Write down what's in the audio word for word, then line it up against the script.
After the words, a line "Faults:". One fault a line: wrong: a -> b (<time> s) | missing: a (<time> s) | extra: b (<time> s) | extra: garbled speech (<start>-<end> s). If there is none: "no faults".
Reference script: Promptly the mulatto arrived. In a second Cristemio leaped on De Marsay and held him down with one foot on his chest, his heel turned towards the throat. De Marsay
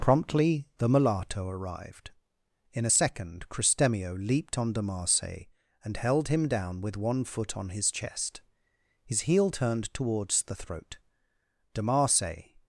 Promptly the mulatto arrived. In a second Cristemio leaped on De Marsay and held him down with one foot on his chest, his heel turned towards the throat. De Marsay
Faults:
no faults